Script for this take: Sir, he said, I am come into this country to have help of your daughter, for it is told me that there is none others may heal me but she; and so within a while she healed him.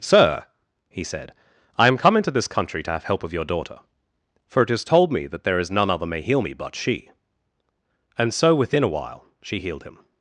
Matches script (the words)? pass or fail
fail